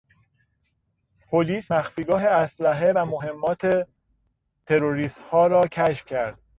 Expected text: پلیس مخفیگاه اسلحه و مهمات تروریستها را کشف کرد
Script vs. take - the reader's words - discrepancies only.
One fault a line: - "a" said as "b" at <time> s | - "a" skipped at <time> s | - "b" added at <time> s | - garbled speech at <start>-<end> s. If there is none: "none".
none